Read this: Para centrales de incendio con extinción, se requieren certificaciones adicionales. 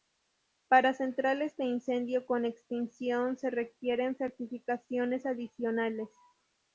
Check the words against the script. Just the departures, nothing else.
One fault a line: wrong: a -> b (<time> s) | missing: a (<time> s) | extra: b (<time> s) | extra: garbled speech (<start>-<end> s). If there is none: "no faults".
no faults